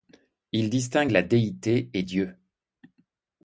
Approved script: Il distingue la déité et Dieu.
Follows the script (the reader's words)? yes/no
yes